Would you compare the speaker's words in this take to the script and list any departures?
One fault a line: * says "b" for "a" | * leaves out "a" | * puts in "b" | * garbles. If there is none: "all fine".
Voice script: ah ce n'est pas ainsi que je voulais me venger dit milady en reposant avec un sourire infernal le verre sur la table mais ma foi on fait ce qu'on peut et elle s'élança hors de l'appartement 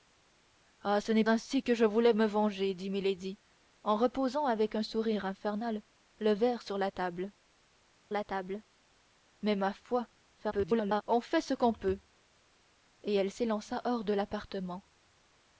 * leaves out "pas"
* puts in "la table"
* garbles